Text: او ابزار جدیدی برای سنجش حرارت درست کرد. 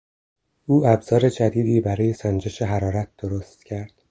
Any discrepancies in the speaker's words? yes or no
no